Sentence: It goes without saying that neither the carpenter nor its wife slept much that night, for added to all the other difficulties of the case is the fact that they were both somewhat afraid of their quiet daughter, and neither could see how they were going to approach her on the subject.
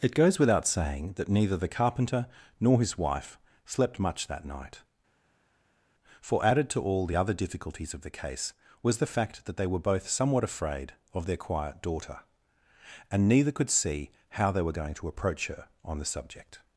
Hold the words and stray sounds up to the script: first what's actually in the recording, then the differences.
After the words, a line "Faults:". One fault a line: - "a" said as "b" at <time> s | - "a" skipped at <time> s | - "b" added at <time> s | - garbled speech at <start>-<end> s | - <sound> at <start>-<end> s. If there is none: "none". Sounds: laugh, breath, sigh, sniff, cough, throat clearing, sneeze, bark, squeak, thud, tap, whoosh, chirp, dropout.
It goes without saying that neither the carpenter nor his wife slept much that night, for added to all the other difficulties of the case was the fact that they were both somewhat afraid of their quiet daughter, and neither could see how they were going to approach her on the subject.
Faults:
- "its" said as "his" at 2.8 s
- "is" said as "was" at 8.8 s